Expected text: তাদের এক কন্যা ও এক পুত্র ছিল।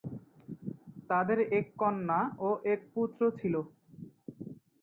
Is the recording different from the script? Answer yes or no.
no